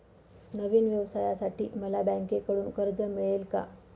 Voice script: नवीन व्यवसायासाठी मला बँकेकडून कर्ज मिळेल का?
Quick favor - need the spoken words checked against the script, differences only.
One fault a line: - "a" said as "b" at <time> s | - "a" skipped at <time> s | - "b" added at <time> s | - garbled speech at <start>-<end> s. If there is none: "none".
none